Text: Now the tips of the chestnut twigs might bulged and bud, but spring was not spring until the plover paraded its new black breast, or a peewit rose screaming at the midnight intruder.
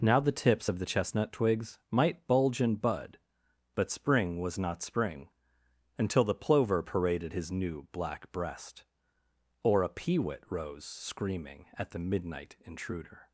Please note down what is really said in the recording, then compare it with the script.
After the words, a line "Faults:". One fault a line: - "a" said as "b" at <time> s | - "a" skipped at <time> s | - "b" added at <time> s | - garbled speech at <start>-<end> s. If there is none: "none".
Now the tips of the chestnut twigs might bulge and bud, but spring was not spring until the plover paraded his new black breast, or a peewit rose screaming at the midnight intruder.
Faults:
- "bulged" said as "bulge" at 2.2 s
- "its" said as "his" at 7.3 s